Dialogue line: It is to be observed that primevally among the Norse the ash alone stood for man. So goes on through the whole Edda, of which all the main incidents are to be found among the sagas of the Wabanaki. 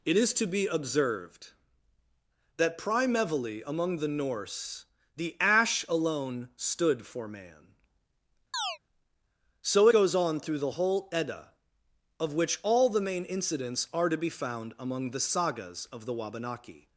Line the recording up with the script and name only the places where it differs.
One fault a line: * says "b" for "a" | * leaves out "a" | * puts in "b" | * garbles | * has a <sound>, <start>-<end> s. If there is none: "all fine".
* has a chirp, 8.5-8.8 s